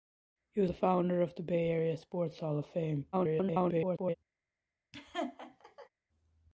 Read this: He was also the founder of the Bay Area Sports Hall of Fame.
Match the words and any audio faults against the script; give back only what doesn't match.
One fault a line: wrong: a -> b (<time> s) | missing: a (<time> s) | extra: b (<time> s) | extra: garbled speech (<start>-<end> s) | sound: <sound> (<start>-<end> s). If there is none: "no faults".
missing: also (0.7 s)
extra: garbled speech (3.1-4.2 s)
sound: laugh (4.9-5.9 s)